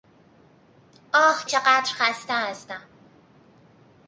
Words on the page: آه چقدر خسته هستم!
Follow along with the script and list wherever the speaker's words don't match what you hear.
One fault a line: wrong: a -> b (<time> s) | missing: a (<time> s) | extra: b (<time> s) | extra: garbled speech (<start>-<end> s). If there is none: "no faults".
no faults